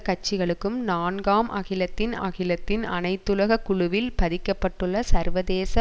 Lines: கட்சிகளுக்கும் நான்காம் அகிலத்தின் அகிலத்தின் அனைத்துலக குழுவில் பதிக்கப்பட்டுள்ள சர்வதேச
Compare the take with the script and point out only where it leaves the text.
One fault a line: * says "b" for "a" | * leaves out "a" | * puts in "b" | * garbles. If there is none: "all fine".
all fine